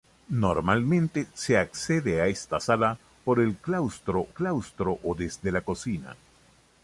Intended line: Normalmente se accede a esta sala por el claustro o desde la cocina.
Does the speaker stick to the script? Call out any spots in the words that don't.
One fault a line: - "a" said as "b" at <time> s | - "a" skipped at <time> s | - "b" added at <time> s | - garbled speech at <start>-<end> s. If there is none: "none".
- "claustro" added at 4.3 s